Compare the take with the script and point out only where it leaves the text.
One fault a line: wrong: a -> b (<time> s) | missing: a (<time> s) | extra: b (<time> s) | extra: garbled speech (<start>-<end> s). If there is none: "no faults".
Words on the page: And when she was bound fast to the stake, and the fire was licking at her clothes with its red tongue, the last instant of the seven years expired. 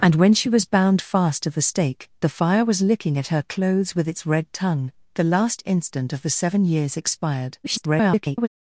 missing: and (2.1 s)
extra: garbled speech (7.6-8.5 s)